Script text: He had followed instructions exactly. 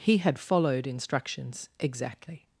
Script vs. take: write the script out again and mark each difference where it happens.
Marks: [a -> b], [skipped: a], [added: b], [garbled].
He had followed instructions exactly.